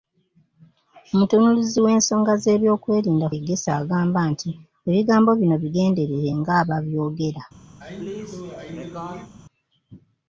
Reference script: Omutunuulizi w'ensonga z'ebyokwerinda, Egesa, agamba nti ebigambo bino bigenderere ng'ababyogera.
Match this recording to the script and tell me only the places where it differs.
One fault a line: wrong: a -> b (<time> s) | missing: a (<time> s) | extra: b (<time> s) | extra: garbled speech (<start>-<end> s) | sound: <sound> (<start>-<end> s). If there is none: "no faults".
sound: sneeze (7.8-9.3 s)